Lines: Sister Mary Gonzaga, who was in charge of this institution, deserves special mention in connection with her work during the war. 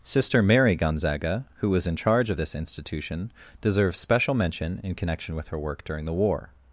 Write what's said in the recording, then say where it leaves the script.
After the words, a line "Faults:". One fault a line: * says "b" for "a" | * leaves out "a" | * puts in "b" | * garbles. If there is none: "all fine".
Sister Mary Gonzaga, who was in charge of this institution, deserves special mention in connection with her work during the war.
Faults:
all fine